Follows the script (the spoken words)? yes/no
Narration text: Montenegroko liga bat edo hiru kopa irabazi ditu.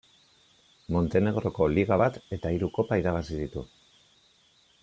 no